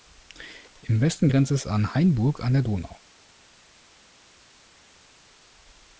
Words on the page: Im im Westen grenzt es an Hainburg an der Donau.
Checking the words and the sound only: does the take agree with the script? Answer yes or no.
no